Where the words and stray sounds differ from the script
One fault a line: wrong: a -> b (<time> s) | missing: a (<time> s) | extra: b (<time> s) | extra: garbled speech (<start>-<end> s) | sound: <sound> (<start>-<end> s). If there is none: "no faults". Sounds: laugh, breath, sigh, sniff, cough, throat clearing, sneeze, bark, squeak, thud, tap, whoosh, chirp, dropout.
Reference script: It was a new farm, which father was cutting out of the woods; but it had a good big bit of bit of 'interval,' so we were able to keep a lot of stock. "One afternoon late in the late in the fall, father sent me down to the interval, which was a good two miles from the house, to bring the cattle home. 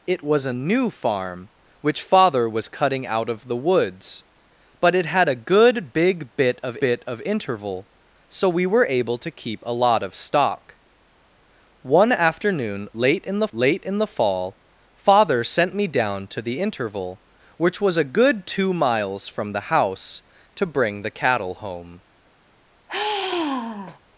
sound: sigh (22.9-24.0 s)